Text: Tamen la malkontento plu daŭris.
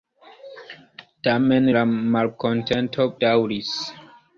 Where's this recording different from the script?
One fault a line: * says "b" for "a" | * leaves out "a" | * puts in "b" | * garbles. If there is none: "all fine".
* leaves out "plu"